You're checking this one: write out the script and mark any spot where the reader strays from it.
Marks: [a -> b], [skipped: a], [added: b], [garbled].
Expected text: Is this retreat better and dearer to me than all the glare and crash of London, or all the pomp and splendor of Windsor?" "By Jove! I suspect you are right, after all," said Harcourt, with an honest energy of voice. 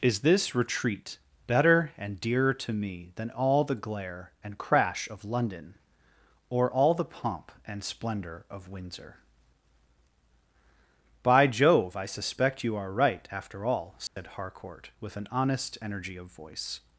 Is this retreat better and dearer to me than all the glare and crash of London, or all the pomp and splendor of Windsor?" "By Jove! I suspect you are right, after all," said Harcourt, with an honest energy of voice.